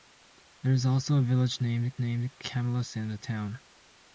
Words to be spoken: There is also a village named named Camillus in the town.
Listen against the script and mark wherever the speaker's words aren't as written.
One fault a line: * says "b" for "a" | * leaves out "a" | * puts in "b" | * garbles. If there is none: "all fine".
all fine